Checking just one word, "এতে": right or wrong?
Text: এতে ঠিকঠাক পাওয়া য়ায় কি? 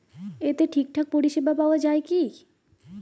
right